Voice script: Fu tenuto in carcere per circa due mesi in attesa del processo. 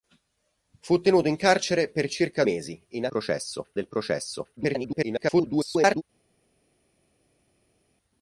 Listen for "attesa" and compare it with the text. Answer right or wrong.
wrong